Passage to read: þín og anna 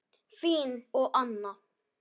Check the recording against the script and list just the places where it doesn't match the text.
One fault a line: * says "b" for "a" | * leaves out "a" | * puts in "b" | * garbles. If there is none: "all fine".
all fine